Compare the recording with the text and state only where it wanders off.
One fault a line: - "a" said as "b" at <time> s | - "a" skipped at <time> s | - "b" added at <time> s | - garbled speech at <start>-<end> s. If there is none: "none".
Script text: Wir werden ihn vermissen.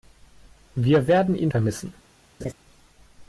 none